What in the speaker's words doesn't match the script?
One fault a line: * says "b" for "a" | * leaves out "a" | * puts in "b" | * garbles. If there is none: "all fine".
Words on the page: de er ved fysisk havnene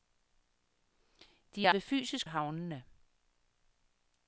all fine